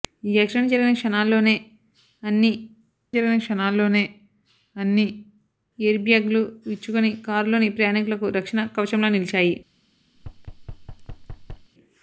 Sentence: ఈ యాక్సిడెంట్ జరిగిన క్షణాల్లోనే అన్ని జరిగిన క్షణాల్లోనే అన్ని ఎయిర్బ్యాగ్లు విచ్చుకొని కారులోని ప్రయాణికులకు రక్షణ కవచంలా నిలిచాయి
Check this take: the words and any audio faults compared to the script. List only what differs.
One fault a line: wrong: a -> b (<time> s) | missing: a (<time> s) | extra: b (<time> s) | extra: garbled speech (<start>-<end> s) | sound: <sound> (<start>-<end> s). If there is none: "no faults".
sound: thud (10.2-11.7 s)